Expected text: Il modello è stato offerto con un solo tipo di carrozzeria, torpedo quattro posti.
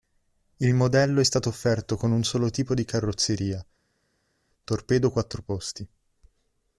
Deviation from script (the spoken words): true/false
false